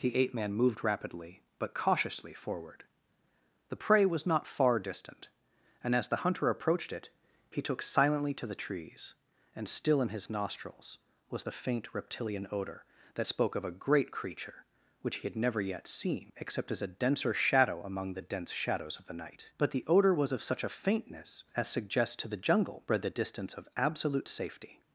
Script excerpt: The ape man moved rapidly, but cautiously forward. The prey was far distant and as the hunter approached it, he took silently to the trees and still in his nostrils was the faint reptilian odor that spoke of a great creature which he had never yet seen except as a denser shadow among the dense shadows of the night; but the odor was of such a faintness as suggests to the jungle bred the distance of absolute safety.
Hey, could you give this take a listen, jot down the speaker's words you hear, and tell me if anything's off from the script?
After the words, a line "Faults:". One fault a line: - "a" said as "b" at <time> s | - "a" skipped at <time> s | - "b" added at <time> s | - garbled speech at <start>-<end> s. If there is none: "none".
The ape man moved rapidly, but cautiously forward. The prey was not far distant and as the hunter approached it, he took silently to the trees and still in his nostrils was the faint reptilian odor that spoke of a great creature which he had never yet seen except as a denser shadow among the dense shadows of the night; but the odor was of such a faintness as suggests to the jungle bred the distance of absolute safety.
Faults:
- "not" added at 4.2 s